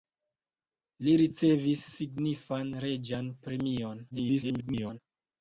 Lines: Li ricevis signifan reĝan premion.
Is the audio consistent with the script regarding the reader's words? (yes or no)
no